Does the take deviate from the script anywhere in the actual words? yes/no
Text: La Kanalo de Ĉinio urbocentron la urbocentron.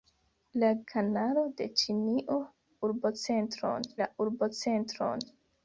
no